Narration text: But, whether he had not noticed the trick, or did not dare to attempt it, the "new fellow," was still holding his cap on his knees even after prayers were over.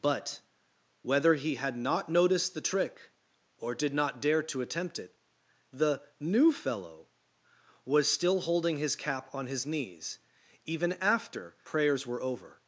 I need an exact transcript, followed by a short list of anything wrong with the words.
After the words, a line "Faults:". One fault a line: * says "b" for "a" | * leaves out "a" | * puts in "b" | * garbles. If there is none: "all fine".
But, whether he had not noticed the trick, or did not dare to attempt it, the "new fellow," was still holding his cap on his knees even after prayers were over.
Faults:
all fine